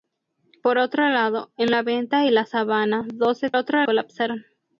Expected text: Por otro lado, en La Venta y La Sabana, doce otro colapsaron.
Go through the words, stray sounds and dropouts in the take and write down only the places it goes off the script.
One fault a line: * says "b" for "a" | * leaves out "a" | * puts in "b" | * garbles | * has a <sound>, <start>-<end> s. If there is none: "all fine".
all fine